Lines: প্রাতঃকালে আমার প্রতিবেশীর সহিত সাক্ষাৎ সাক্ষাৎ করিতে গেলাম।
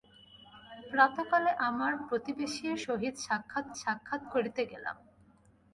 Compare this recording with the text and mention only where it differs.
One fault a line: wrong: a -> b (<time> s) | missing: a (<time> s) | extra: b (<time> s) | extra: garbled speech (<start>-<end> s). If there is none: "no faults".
no faults